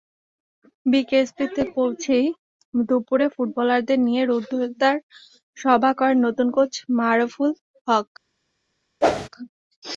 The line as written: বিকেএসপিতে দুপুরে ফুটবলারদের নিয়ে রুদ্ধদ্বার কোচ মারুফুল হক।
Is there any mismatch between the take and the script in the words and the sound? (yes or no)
yes